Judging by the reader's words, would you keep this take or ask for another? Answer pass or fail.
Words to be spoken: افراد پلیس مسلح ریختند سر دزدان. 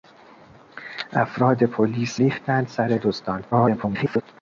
fail